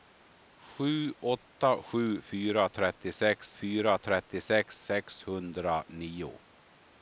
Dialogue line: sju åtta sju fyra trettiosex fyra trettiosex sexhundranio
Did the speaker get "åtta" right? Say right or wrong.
right